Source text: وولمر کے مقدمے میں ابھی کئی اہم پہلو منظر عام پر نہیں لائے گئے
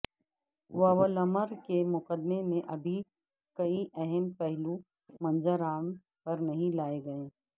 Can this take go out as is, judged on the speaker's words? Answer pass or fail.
pass